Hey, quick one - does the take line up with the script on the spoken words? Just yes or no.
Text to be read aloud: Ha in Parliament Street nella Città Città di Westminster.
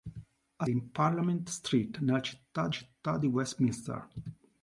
yes